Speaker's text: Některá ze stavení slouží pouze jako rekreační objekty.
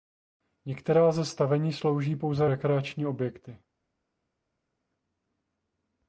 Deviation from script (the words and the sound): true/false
true